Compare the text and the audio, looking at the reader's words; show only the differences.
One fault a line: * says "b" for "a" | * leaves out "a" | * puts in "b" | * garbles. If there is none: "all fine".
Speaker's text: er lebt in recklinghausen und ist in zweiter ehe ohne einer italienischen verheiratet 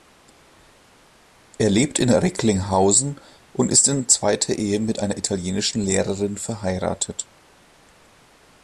* says "mit" for "ohne"
* puts in "lehrerin"